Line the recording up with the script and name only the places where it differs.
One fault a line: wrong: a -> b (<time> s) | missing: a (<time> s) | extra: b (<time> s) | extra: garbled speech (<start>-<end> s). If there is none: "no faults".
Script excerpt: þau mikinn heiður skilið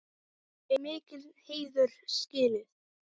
no faults